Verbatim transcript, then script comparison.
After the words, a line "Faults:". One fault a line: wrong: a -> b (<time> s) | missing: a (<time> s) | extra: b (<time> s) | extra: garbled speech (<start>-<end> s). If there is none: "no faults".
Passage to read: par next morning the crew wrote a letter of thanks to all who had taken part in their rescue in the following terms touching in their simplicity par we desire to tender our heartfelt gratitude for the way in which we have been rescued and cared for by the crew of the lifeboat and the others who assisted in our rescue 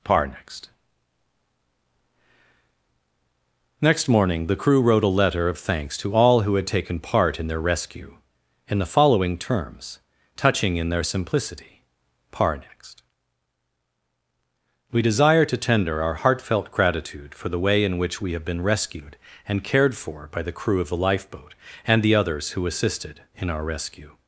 par next next morning the crew wrote a letter of thanks to all who had taken part in their rescue in the following terms touching in their simplicity par next we desire to tender our heartfelt gratitude for the way in which we have been rescued and cared for by the crew of the lifeboat and the others who assisted in our rescue
Faults:
extra: next (3.8 s)
extra: next (12.6 s)